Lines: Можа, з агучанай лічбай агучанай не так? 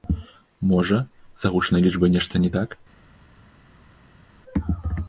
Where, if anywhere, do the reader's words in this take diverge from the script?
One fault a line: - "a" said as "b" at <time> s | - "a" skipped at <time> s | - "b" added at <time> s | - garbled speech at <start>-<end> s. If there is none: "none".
- "агучанай" said as "нешта" at 2.2 s